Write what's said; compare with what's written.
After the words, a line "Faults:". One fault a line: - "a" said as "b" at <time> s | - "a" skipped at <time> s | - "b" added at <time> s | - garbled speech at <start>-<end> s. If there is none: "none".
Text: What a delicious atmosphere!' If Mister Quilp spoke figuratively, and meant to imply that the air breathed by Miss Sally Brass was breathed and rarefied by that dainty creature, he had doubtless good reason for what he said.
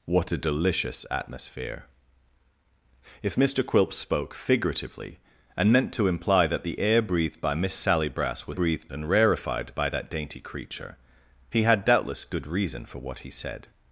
What a delicious atmosphere!' If Mister Quilp spoke figuratively, and meant to imply that the air breathed by Miss Sally Brass was breathed and rarefied by that dainty creature, he had doubtless good reason for what he said.
Faults:
none